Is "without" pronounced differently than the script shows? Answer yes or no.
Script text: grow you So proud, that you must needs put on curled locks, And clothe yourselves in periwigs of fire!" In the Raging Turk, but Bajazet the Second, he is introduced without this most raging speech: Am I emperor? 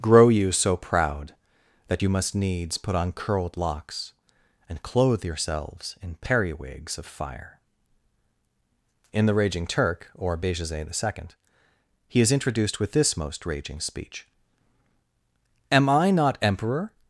yes